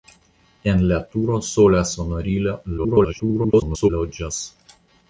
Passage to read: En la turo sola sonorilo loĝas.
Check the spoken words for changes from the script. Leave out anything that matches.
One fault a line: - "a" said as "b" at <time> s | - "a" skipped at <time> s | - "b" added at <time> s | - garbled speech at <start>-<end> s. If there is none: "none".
- garbled speech at 2.8-3.9 s